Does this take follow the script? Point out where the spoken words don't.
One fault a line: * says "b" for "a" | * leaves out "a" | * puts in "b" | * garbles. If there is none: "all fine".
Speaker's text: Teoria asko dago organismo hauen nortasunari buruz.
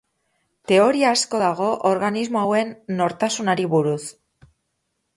all fine